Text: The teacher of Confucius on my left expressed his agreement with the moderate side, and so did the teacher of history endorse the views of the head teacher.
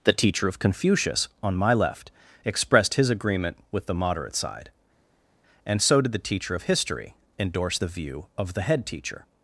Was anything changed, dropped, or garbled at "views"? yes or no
yes